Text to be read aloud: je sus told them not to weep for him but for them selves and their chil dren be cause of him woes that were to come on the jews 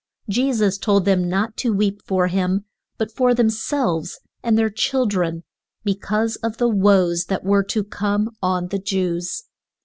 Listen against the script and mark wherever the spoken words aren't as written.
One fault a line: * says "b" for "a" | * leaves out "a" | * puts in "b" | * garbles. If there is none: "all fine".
* says "the" for "him"